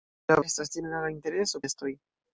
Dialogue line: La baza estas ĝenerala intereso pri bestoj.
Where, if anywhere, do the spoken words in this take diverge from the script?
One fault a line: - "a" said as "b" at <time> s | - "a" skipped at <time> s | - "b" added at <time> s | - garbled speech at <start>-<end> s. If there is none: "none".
- "baza" skipped at 0.4 s
- "pri" skipped at 1.7 s